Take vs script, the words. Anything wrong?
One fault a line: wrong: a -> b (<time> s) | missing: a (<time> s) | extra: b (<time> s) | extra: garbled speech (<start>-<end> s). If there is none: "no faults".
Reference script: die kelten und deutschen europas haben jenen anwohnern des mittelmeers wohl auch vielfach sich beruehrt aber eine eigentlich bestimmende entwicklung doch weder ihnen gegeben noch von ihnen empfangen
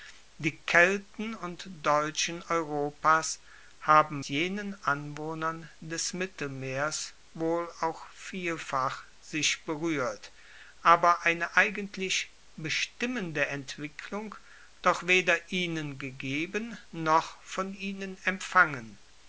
no faults